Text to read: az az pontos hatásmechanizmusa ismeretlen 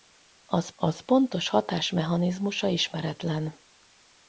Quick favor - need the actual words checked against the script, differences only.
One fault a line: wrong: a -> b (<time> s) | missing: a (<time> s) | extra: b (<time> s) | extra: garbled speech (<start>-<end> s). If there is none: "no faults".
no faults